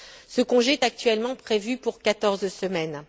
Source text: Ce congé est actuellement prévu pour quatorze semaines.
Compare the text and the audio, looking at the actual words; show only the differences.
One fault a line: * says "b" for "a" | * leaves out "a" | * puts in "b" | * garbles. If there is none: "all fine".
all fine